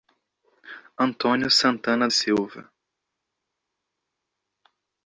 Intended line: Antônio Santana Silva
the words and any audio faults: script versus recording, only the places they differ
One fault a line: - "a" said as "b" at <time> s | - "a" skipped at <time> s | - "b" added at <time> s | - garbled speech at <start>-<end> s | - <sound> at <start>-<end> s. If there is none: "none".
none